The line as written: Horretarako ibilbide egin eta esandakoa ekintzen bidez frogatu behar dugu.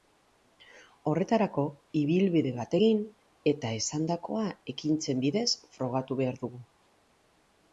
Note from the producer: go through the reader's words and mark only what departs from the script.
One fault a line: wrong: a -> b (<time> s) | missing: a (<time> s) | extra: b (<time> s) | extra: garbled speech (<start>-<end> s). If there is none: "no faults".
extra: bat (2.5 s)